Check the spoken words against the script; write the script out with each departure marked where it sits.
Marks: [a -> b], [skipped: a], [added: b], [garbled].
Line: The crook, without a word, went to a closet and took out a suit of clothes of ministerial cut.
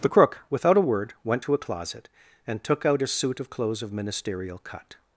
The crook, without a word, went to a closet and took out a suit of clothes of ministerial cut.